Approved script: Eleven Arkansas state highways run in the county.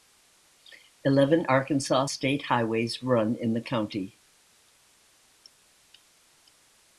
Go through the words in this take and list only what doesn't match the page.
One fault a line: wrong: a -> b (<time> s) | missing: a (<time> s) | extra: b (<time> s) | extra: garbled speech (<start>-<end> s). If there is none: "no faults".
no faults